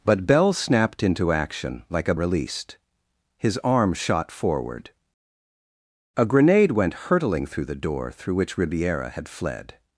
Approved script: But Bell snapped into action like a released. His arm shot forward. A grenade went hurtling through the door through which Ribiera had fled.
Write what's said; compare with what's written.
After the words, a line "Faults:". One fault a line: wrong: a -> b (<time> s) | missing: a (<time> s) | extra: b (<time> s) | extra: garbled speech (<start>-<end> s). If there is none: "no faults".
But Bell snapped into action like a released. His arm shot forward. A grenade went hurtling through the door through which Ribiera had fled.
Faults:
no faults